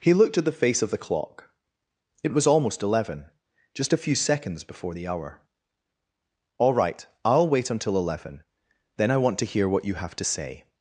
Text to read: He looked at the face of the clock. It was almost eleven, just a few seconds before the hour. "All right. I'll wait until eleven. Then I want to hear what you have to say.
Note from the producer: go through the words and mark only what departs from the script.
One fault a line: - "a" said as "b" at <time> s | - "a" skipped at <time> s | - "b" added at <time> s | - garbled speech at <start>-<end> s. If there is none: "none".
none